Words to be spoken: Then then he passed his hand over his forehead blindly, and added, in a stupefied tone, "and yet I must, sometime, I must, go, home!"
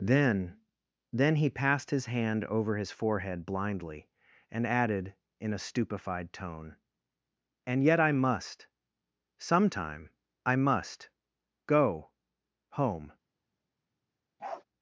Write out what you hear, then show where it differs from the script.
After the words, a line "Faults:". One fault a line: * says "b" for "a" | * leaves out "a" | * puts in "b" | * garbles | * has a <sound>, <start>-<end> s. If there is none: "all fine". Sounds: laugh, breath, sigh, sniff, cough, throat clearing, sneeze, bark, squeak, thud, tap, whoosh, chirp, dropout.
Then then he passed his hand over his forehead blindly, and added, in a stupefied tone, "and yet I must, sometime, I must, go, home!"
Faults:
* has a bark, 14.4-14.6 s